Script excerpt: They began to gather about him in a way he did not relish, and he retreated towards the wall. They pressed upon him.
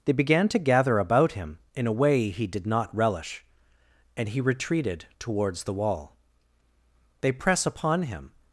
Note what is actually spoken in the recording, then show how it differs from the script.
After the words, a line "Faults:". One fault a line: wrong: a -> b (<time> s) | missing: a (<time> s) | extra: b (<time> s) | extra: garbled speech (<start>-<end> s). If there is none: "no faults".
They began to gather about him in a way he did not relish, and he retreated towards the wall. They press upon him.
Faults:
wrong: pressed -> press (7.3 s)